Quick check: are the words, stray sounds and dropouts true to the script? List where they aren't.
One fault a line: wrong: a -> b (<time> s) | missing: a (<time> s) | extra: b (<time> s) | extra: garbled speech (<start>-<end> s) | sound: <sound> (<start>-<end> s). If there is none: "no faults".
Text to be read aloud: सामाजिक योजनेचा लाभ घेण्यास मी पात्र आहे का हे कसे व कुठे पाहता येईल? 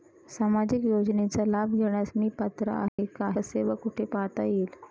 sound: dropout (2.9-3.0 s)
missing: हे (3.3 s)